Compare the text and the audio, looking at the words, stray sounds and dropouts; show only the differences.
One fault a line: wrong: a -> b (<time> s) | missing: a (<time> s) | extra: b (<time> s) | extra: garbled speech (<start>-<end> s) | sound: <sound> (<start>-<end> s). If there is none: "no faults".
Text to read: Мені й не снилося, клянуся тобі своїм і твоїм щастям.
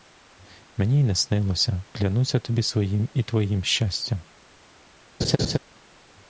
sound: laugh (5.2-5.6 s)